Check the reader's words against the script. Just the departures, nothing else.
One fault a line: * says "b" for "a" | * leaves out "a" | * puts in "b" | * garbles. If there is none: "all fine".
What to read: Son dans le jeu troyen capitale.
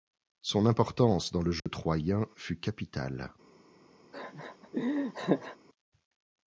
* puts in "importance"
* puts in "fut"